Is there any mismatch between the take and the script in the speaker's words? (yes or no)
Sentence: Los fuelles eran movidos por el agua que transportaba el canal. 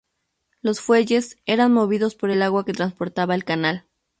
no